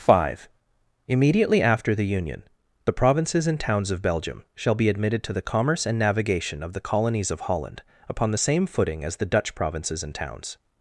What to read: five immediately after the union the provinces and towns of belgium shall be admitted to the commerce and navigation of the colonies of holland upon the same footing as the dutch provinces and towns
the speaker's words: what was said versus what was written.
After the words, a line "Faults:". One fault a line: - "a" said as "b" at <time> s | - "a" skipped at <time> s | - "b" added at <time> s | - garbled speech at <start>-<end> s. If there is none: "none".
five immediately after the union the provinces and towns of belgium shall be admitted to the commerce and navigation of the colonies of holland upon the same footing as the dutch provinces and towns
Faults:
none